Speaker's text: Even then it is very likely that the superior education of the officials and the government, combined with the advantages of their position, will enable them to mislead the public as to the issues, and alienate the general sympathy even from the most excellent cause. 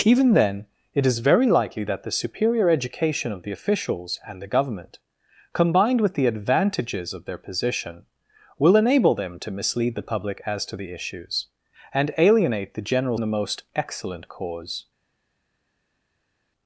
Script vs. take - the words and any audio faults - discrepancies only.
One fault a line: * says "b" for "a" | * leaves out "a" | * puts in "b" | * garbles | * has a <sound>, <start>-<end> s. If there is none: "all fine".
* leaves out "sympathy even from"